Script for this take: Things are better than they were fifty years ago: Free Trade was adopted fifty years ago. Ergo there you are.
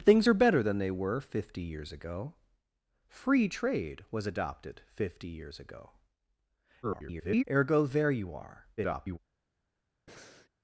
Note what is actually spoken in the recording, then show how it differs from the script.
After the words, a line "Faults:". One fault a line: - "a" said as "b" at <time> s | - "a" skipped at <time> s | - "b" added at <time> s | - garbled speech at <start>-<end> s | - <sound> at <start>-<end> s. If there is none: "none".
Things are better than they were fifty years ago: Free Trade was adopted fifty years ago. [garbled] Ergo there you are. [garbled]
Faults:
- garbled speech at 6.8-7.4 s
- garbled speech at 8.8-9.2 s
- breath at 10.1-10.5 s